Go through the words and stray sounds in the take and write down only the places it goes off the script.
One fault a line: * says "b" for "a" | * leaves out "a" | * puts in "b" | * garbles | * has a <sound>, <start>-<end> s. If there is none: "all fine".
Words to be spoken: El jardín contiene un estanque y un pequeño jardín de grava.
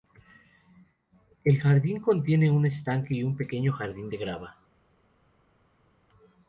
all fine